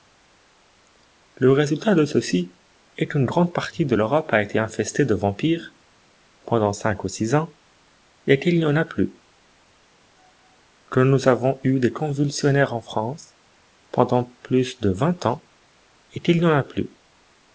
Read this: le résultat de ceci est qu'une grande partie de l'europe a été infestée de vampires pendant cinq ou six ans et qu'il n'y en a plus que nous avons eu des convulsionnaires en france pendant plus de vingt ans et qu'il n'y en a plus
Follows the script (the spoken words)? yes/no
yes